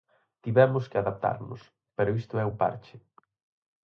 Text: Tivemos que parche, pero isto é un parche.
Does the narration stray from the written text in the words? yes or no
yes